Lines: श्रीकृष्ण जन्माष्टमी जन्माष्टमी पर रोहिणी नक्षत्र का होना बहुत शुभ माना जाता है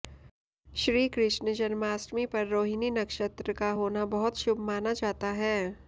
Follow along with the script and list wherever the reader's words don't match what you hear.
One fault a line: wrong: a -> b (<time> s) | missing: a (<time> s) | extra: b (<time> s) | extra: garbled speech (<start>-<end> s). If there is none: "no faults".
missing: जन्माष्टमी (2.2 s)